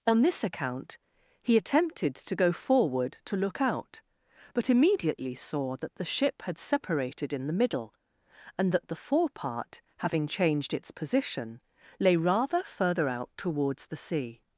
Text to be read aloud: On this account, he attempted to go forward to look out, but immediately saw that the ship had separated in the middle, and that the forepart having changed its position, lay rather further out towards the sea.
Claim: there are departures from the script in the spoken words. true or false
false